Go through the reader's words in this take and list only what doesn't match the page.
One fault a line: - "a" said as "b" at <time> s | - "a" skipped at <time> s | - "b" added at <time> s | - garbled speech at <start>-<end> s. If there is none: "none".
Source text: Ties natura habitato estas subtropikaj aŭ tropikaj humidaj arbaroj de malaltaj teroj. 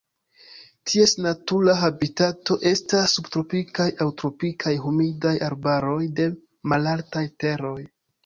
none